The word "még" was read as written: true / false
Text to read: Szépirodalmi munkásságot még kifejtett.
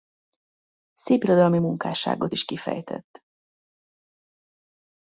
false